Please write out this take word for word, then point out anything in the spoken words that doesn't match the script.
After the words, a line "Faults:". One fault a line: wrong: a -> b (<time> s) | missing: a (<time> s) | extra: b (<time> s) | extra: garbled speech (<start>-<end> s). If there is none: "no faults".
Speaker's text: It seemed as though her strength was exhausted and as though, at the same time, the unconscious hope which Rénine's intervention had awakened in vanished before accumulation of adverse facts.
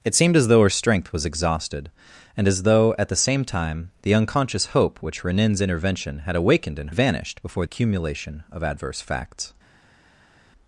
It seemed as though her strength was exhausted and as though, at the same time, the unconscious hope which Rénine's intervention had awakened in vanished before accumulation of adverse facts.
Faults:
no faults